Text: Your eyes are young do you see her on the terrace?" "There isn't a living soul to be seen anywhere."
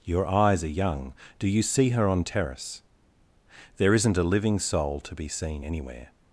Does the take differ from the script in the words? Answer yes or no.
yes